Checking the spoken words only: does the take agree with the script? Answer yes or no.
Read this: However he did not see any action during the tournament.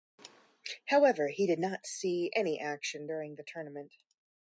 yes